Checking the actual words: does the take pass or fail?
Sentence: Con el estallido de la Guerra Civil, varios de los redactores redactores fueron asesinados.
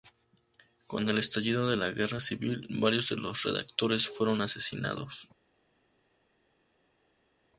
fail